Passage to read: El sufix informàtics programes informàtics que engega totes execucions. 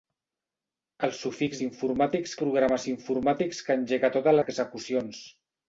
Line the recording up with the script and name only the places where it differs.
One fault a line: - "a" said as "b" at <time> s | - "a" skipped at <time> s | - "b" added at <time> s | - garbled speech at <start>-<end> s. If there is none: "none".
none